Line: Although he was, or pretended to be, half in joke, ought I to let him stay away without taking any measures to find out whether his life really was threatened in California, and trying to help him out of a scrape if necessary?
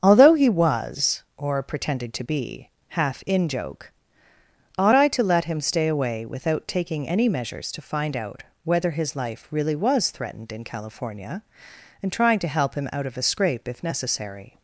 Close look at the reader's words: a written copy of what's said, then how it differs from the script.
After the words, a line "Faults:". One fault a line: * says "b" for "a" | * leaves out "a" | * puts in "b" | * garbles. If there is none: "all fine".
Although he was, or pretended to be, half in joke, ought I to let him stay away without taking any measures to find out whether his life really was threatened in California, and trying to help him out of a scrape if necessary?
Faults:
all fine